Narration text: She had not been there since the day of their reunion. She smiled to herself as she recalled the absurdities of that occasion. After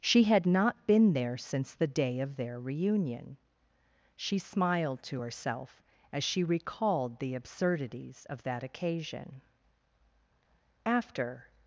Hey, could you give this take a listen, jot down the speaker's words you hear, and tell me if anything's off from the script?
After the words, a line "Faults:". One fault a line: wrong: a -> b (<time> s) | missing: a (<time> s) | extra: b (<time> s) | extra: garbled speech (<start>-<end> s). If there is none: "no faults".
She had not been there since the day of their reunion. She smiled to herself as she recalled the absurdities of that occasion. After
Faults:
no faults